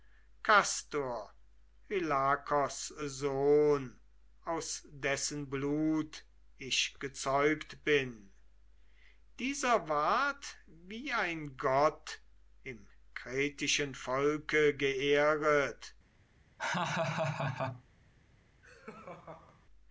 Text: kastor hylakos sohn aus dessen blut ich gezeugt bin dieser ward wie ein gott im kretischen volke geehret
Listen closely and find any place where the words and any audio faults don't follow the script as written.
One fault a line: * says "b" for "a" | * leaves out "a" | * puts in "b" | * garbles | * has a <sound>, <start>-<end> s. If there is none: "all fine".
* has a laugh, 16.6-17.8 s
* has a laugh, 18.6-19.7 s